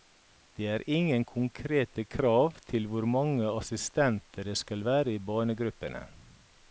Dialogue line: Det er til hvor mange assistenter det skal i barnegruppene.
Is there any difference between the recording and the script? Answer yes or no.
yes